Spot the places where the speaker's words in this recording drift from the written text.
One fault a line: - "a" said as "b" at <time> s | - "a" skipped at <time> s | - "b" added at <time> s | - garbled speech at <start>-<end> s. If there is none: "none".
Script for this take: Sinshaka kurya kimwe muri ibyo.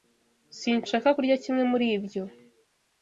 none